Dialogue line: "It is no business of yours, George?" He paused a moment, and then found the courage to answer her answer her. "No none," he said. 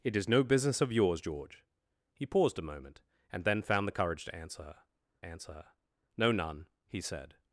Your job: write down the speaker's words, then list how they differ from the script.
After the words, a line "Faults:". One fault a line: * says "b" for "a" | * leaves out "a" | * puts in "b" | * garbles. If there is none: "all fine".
"It is no business of yours, George?" He paused a moment, and then found the courage to answer her answer her. "No none," he said.
Faults:
all fine